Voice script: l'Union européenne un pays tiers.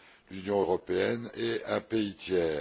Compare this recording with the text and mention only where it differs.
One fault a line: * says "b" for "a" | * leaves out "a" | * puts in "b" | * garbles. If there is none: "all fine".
* puts in "et"